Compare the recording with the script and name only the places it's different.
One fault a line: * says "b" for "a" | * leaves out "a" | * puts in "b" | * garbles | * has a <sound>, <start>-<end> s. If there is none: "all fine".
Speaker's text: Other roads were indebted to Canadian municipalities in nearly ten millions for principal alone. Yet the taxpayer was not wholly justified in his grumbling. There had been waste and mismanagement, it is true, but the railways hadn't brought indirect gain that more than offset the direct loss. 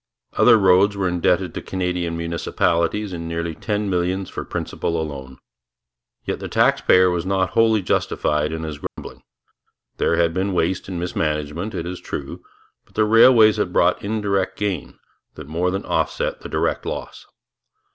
* has a dropout, 8.9-9.0 s
* says "had" for "hadn't"